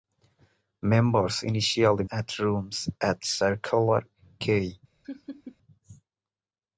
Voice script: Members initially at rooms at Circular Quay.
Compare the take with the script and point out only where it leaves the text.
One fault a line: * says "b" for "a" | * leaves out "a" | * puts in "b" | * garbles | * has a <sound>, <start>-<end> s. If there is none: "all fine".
* has a laugh, 5.0-5.6 s